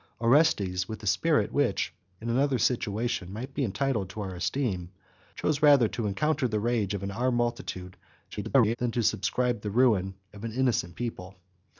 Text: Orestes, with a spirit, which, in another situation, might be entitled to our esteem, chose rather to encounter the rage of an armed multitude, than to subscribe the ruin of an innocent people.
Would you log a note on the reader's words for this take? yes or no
yes